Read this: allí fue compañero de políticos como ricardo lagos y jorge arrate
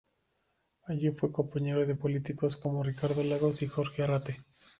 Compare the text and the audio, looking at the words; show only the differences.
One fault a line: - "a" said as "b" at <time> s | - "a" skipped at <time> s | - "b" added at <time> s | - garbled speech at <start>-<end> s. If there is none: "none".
none